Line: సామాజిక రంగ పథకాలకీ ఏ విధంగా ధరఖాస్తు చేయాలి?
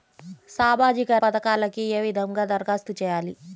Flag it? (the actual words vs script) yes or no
yes